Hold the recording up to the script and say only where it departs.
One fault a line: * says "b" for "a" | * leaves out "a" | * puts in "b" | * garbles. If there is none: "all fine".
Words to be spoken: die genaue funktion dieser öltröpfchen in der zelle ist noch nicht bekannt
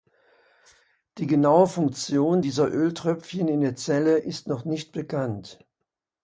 all fine